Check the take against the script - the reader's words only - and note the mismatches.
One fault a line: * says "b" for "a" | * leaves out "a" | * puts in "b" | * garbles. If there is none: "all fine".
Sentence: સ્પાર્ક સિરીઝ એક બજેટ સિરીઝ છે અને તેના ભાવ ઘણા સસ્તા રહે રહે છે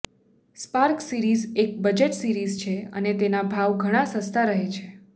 * leaves out "રહે"